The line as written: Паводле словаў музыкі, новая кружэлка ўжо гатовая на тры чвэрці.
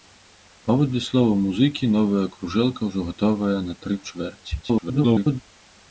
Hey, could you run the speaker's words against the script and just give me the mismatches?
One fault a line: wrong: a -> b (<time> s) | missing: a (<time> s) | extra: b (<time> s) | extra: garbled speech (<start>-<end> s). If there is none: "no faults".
extra: garbled speech (4.6-5.4 s)